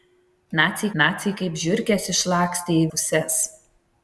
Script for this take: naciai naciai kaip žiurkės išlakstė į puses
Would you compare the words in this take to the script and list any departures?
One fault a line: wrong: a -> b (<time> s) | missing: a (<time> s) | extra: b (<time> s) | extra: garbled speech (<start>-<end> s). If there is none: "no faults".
no faults